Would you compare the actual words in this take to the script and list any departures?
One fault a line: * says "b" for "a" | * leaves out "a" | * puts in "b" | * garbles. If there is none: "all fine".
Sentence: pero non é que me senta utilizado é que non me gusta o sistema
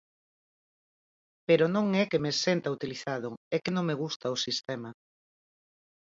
all fine